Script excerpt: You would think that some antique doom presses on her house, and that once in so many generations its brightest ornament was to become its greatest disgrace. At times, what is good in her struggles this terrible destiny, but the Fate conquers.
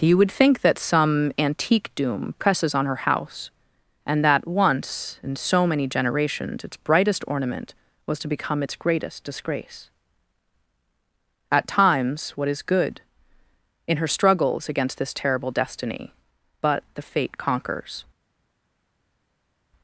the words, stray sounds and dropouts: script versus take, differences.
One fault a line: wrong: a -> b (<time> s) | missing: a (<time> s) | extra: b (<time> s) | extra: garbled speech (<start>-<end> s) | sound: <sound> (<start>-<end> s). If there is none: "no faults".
extra: against (14.7 s)